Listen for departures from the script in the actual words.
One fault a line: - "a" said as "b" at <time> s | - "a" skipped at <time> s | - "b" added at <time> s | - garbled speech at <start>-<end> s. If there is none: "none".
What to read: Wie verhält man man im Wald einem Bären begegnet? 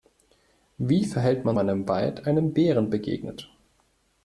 none